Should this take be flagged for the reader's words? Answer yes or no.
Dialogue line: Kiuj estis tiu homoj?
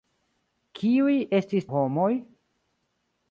yes